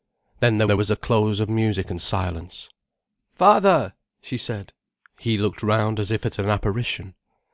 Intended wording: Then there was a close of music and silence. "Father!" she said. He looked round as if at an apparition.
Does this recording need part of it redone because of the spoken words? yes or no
yes